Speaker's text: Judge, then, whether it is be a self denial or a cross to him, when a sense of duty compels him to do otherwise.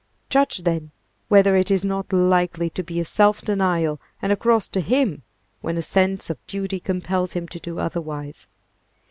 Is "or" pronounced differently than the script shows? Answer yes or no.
yes